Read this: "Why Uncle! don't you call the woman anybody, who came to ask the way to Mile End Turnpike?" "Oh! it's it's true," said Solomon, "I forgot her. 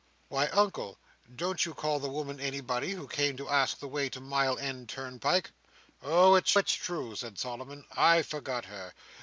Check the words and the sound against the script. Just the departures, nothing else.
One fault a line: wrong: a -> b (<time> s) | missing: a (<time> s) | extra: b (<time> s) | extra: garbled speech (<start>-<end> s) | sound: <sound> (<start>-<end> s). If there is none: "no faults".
no faults